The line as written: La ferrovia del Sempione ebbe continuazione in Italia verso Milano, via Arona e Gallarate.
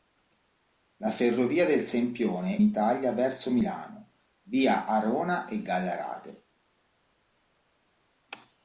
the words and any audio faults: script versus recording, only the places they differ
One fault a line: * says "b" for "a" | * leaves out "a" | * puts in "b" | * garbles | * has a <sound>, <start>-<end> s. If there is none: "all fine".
* leaves out "ebbe continuazione in"